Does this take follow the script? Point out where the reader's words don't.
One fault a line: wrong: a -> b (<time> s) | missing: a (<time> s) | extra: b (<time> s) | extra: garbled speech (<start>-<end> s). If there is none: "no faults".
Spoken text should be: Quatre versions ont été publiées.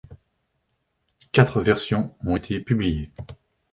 no faults